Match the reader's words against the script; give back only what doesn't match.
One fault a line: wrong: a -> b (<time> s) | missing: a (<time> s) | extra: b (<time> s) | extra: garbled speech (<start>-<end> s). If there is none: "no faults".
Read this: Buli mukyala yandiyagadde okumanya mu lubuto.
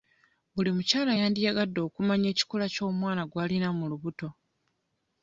extra: ekikula ky'omwana gw'alina (2.3 s)